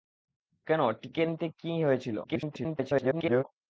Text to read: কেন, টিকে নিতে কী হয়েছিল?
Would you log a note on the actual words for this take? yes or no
yes